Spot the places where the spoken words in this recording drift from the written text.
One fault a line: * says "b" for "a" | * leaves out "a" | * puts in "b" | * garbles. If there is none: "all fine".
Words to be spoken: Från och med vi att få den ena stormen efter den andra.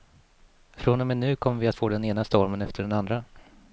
* puts in "nu kommer"